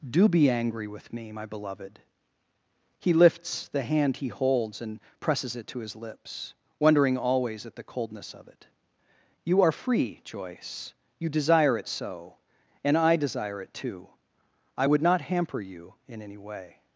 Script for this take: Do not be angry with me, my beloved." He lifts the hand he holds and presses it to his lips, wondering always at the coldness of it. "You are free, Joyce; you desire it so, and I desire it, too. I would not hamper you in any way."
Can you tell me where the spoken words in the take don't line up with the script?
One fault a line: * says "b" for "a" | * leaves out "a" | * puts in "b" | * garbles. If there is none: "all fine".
* leaves out "not"